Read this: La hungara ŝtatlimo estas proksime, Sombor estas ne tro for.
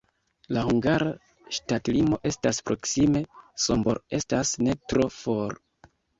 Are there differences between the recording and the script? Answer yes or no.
no